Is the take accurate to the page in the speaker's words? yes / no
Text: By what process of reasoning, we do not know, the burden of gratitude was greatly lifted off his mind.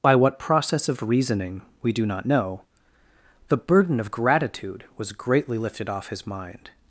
yes